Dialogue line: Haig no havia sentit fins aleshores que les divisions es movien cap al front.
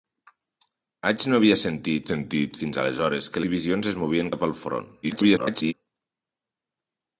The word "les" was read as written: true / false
false